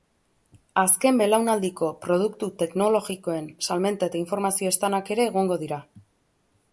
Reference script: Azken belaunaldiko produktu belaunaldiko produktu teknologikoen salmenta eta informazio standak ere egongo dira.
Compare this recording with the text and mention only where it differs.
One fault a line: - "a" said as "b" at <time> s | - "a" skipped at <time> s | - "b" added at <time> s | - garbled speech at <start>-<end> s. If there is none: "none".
- "belaunaldiko produktu" skipped at 2.5 s